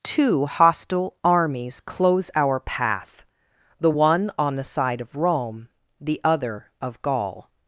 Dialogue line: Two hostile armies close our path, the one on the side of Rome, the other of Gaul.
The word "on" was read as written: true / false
true